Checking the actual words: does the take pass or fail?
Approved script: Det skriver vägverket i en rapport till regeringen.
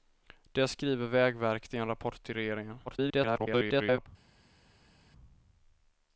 fail